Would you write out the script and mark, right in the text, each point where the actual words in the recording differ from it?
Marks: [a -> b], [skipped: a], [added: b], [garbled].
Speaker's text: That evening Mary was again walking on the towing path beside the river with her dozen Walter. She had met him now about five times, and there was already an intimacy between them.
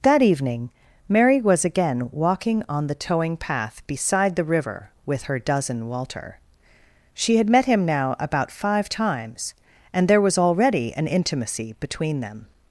That evening Mary was again walking on the towing path beside the river with her dozen Walter. She had met him now about five times, and there was already an intimacy between them.